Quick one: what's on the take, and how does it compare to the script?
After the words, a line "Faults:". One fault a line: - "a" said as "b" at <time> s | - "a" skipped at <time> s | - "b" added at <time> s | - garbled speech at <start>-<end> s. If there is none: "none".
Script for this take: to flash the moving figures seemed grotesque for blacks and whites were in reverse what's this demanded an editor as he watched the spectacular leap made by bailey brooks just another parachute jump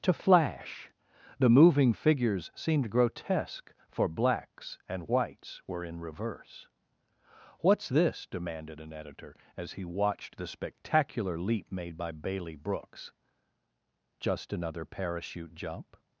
to flash the moving figures seemed grotesque for blacks and whites were in reverse what's this demanded an editor as he watched the spectacular leap made by bailey brooks just another parachute jump
Faults:
none